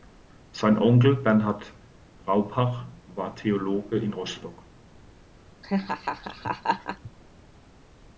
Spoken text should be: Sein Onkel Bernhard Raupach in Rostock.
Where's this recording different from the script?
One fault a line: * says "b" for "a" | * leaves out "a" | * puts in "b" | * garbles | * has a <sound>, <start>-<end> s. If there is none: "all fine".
* puts in "war Theologe"
* has a laugh, 5.6-7.1 s